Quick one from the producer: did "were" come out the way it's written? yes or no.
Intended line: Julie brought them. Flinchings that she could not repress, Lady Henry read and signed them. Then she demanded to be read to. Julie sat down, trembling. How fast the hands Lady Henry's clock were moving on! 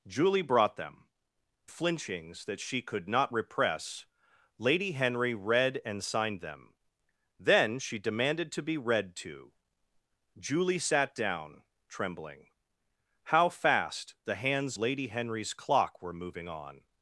yes